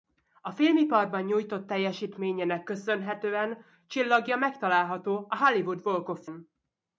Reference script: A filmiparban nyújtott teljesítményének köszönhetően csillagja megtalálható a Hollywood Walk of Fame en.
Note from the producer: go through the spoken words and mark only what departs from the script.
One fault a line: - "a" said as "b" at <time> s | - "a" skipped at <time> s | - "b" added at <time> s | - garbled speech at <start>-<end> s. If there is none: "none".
- "Fame" skipped at 6.2 s